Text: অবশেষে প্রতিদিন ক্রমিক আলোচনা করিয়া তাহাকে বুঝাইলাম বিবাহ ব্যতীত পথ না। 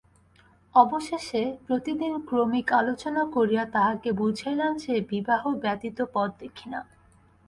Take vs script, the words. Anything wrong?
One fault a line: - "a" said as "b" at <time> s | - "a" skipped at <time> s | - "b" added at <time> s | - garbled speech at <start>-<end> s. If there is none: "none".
- "যে" added at 4.8 s
- "দেখি" added at 6.4 s